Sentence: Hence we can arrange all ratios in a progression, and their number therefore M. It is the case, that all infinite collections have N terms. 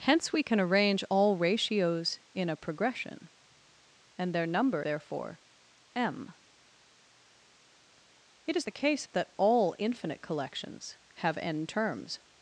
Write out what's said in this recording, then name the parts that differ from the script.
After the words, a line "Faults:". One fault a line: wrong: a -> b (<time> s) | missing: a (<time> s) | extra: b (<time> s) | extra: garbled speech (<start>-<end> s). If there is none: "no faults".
Hence we can arrange all ratios in a progression, and their number therefore M. It is the case, that all infinite collections have N terms.
Faults:
no faults